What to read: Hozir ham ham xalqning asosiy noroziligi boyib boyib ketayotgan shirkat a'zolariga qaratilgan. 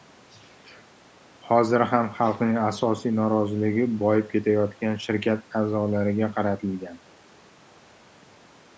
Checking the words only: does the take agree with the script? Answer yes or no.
no